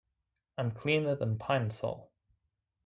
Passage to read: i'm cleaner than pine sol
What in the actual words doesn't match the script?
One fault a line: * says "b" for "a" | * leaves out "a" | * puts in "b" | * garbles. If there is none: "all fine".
all fine